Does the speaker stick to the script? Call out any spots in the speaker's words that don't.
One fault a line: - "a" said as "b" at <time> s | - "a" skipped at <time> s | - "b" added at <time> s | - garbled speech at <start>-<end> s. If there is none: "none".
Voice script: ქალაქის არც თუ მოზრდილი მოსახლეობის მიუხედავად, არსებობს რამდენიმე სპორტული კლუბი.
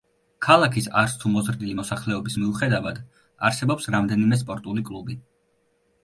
none